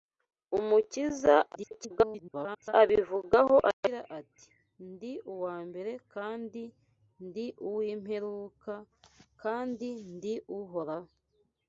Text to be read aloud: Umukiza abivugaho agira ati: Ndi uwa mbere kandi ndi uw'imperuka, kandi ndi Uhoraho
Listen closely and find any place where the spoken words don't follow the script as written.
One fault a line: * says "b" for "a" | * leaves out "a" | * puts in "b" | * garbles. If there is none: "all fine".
* garbles